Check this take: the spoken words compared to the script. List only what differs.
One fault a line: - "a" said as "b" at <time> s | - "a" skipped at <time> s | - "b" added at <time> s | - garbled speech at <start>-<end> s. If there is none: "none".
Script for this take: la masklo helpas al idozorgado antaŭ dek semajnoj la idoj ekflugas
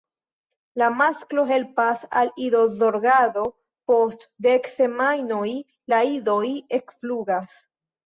- "antaŭ" said as "post" at 3.9 s